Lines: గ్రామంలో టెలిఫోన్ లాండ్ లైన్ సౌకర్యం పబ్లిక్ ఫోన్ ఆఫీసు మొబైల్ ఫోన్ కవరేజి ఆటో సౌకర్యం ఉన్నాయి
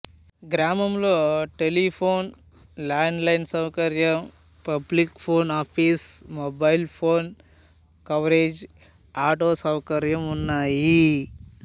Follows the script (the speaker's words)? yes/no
yes